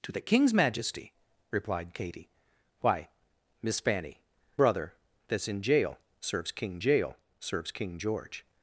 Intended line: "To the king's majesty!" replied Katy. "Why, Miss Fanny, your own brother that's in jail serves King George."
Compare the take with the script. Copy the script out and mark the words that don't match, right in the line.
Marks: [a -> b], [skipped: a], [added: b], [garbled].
"To the king's majesty!" replied Katy. "Why, Miss Fanny, [skipped: your own] brother that's in jail serves King [added: jail serves King] George."